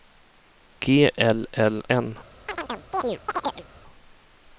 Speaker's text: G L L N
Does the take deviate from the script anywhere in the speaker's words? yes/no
no